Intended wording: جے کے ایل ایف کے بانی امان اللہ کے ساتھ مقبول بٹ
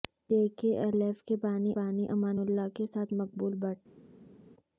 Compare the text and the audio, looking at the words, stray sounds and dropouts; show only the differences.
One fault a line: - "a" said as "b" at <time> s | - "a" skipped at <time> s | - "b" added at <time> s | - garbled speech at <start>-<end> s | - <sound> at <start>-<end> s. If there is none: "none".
- "بانی" added at 1.8 s